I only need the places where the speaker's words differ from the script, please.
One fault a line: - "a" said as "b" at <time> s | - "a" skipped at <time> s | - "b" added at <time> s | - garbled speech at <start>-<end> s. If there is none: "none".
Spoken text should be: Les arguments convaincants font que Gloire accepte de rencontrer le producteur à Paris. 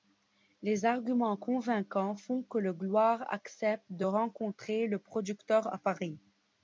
none